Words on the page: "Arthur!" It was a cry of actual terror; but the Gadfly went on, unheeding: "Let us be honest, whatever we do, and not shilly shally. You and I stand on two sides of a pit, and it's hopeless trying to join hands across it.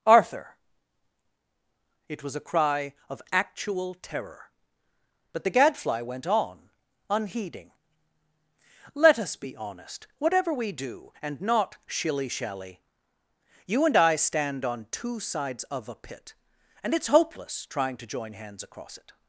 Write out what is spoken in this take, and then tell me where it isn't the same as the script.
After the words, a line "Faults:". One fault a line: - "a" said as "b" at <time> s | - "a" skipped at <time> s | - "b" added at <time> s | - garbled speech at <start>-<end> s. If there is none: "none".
"Arthur!" It was a cry of actual terror; but the Gadfly went on, unheeding: "Let us be honest, whatever we do, and not shilly shally. You and I stand on two sides of a pit, and it's hopeless trying to join hands across it.
Faults:
none